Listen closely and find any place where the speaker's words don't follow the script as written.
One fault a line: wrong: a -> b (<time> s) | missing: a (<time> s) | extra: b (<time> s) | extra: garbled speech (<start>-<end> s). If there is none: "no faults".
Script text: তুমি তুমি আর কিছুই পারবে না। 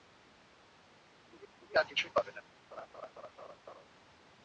no faults